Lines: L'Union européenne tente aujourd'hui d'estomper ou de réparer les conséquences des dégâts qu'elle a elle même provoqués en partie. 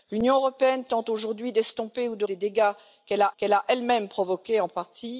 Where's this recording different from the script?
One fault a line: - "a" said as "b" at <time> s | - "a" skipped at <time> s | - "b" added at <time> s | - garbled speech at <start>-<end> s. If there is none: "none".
- "réparer les conséquences des dégâts" said as "des dégâts qu'elle a" at 2.2 s